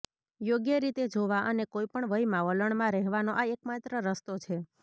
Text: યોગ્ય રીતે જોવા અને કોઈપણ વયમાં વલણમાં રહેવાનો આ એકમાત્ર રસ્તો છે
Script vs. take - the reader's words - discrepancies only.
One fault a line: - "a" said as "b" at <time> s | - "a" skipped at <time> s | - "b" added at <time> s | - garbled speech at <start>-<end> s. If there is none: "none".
none